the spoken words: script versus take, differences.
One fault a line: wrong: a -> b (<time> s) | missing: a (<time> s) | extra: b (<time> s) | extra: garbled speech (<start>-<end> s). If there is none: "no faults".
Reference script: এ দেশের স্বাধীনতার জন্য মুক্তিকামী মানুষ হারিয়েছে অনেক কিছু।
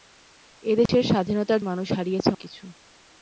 missing: জন্য মুক্তিকামী (1.6 s)
missing: অনেক (2.3 s)